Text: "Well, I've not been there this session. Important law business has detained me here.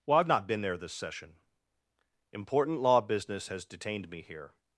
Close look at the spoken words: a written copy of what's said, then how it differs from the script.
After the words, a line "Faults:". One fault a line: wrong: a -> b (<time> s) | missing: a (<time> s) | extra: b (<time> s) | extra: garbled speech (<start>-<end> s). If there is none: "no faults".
"Well, I've not been there this session. Important law business has detained me here.
Faults:
no faults